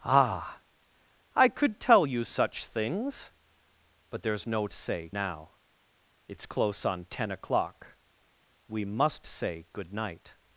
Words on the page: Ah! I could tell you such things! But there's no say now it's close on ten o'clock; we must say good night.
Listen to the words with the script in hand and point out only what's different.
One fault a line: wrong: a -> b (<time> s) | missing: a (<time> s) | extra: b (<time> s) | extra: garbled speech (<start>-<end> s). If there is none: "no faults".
no faults